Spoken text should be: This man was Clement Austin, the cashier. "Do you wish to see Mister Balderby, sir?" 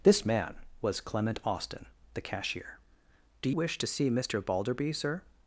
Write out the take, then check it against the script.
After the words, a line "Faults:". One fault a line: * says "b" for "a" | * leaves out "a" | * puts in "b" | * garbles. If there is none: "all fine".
This man was Clement Austin, the cashier. "Do wish to see Mister Balderby, sir?"
Faults:
* leaves out "you"